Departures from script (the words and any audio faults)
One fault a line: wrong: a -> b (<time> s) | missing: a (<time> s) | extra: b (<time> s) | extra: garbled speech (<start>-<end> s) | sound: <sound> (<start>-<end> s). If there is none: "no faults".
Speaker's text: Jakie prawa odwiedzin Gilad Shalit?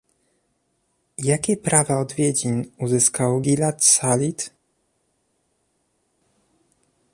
extra: uzyskał (2.8 s)